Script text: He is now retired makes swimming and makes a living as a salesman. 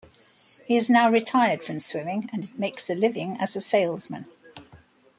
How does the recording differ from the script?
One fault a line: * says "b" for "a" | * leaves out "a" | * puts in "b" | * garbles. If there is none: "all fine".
* says "from" for "makes"